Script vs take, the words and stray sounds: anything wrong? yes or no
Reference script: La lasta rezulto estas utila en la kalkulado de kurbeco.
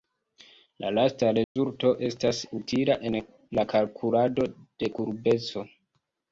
yes